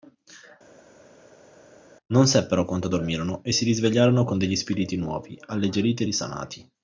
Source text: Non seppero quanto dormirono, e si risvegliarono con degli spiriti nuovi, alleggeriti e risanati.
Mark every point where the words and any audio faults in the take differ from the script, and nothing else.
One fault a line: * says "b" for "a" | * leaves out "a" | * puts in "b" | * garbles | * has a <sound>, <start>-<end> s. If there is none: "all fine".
all fine